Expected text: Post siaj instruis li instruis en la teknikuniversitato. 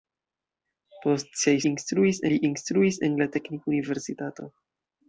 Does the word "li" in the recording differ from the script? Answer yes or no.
no